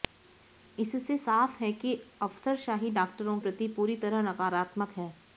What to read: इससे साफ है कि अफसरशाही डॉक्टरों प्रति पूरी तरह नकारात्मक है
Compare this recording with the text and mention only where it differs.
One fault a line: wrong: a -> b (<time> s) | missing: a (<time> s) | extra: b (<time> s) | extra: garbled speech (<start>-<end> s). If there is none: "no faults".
no faults